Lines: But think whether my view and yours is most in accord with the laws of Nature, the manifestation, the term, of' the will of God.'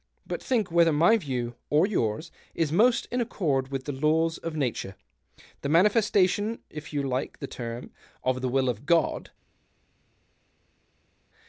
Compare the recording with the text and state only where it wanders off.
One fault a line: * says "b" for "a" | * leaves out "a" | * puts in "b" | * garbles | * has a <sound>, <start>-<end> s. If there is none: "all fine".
* says "or" for "and"
* puts in "if you like"